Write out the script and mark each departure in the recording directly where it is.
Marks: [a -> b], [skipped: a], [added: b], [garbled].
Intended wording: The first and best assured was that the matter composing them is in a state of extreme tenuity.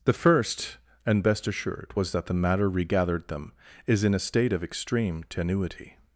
The first and best assured was that the matter [composing -> regathered] them is in a state of extreme tenuity.